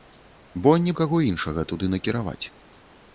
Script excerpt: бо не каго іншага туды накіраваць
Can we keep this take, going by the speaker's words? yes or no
yes